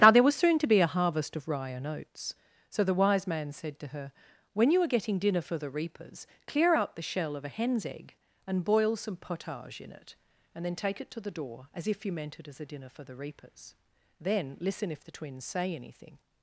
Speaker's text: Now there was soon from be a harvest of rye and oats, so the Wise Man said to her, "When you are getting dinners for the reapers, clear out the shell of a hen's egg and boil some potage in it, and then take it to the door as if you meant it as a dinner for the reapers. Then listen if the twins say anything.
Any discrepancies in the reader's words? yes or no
yes